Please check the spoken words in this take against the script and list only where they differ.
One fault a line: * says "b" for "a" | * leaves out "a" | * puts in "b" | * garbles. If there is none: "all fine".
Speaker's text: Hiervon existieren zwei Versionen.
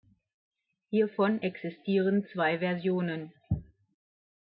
all fine